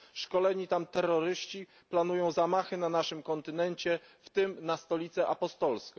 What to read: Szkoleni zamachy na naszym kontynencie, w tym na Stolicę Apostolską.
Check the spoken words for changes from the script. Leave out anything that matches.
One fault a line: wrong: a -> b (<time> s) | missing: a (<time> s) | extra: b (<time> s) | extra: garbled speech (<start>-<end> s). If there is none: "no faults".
extra: tam terroryści planują (0.7 s)